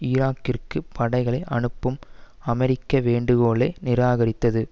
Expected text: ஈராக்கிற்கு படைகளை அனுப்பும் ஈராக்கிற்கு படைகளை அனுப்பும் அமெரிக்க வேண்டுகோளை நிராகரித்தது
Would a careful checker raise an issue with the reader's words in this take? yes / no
yes